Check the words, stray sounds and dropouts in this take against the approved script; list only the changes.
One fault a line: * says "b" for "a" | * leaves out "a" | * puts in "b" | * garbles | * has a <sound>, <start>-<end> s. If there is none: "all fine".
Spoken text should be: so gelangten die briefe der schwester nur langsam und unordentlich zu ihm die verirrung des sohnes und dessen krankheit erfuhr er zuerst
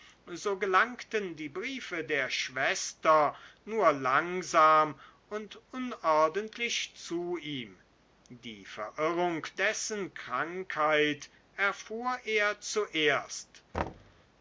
* leaves out "des sohnes und"
* has a thud, 13.7-14.2 s